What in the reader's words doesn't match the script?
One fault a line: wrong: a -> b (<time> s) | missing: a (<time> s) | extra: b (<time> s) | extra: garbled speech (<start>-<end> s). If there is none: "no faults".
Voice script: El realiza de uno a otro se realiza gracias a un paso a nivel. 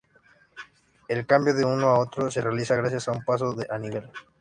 wrong: realiza -> cambio (1.3 s)